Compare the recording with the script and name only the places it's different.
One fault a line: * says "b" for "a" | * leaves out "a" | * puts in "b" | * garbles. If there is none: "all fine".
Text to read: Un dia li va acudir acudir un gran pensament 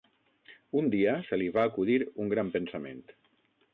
* puts in "se"
* leaves out "acudir"